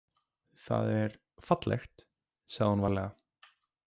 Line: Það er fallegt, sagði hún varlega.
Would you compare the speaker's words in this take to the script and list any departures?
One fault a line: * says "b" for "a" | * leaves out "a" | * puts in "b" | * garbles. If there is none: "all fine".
all fine